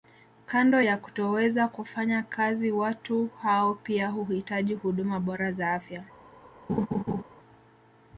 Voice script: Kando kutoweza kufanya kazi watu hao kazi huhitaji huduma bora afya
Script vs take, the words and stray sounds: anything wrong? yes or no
yes